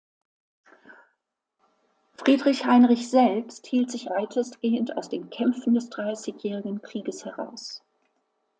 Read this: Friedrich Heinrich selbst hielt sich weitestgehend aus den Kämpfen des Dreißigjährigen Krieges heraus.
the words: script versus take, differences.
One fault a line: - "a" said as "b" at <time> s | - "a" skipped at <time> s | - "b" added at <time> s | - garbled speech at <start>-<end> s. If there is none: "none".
none